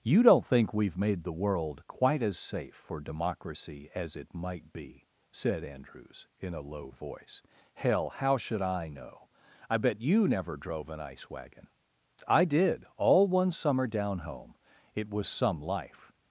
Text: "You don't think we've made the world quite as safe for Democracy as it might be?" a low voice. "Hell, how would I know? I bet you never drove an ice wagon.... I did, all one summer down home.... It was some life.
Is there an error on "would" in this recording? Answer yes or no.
yes